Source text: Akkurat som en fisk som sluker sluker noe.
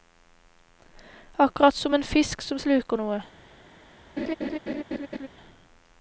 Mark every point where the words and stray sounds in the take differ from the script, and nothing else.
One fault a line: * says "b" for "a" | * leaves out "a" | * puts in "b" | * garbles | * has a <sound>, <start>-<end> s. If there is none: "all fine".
* leaves out "sluker"
* has a laugh, 4.2-5.3 s